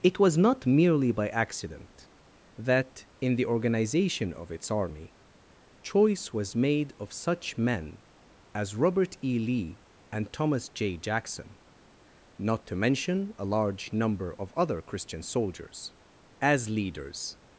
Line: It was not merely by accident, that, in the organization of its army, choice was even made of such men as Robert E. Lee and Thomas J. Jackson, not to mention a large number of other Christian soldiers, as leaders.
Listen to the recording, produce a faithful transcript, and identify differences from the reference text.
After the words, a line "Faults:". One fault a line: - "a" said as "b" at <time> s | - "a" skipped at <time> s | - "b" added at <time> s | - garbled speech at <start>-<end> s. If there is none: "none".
It was not merely by accident, that, in the organization of its army, choice was made of such men as Robert E. Lee and Thomas J. Jackson, not to mention a large number of other Christian soldiers, as leaders.
Faults:
- "even" skipped at 6.5 s